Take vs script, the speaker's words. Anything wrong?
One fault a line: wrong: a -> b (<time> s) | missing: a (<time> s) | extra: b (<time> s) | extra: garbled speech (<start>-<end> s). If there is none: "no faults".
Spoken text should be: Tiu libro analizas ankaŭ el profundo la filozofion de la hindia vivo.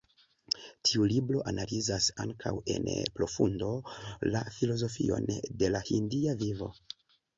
wrong: el -> en (2.8 s)